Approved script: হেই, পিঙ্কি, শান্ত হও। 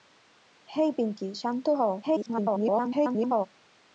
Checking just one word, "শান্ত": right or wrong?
right